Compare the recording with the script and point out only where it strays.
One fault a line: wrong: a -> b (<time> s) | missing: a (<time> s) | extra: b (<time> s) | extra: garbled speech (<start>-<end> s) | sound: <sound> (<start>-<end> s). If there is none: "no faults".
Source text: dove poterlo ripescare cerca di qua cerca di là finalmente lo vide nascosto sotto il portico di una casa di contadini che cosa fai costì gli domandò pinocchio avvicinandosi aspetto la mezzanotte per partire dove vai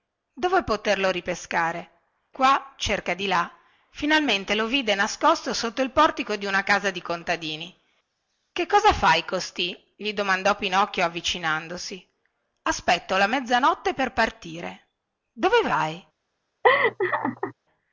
missing: cerca di (2.0 s)
sound: laugh (16.6-17.5 s)